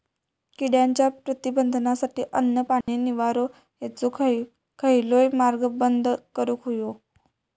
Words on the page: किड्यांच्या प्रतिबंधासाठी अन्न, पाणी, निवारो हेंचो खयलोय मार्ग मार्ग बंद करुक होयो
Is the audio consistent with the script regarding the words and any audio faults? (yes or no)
no